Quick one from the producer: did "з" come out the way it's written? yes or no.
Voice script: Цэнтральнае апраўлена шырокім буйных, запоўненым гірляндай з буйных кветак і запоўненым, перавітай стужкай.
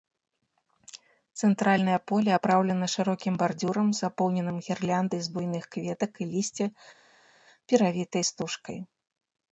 yes